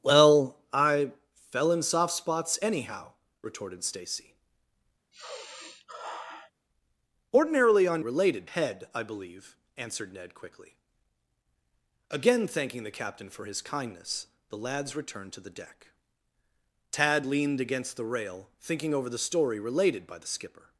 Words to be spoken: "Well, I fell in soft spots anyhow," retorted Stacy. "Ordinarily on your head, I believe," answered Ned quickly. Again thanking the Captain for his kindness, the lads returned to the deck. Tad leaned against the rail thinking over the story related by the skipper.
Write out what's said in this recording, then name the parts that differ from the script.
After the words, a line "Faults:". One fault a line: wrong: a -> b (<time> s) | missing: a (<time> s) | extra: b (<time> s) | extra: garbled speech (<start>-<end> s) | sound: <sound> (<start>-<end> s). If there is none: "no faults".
"Well, I fell in soft spots anyhow," retorted Stacy. "Ordinarily on related head, I believe," answered Ned quickly. Again thanking the Captain for his kindness, the lads returned to the deck. Tad leaned against the rail thinking over the story related by the skipper.
Faults:
sound: sigh (5.1-6.5 s)
wrong: your -> related (8.0 s)